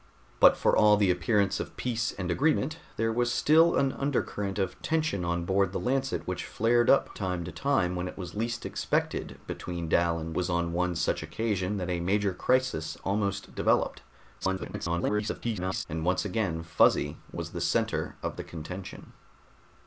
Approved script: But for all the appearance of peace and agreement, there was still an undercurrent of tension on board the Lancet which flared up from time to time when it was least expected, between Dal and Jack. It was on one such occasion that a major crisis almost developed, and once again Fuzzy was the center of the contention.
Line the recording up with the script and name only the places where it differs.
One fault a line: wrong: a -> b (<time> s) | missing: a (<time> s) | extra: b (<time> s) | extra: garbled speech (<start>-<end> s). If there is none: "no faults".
missing: from (7.1 s)
missing: Jack It (10.4 s)
extra: garbled speech (14.4-15.8 s)